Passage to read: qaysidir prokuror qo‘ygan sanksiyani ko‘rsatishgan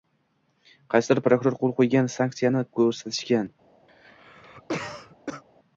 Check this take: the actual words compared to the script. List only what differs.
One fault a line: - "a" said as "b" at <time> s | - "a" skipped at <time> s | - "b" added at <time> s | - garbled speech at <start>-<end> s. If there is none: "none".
- "qo‘l" added at 1.6 s